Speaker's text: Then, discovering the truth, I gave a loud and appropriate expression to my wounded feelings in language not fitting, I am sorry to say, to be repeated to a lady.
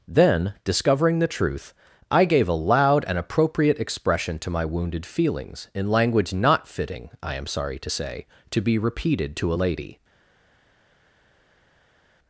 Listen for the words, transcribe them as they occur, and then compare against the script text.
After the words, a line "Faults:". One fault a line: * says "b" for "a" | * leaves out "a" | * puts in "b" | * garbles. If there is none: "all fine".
Then, discovering the truth, I gave a loud and appropriate expression to my wounded feelings in language not fitting, I am sorry to say, to be repeated to a lady.
Faults:
all fine